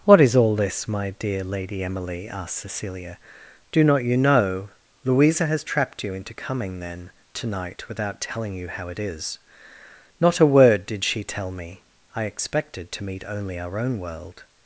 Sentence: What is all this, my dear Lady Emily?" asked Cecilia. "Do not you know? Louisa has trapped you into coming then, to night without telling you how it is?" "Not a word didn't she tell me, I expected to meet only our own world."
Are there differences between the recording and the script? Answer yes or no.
yes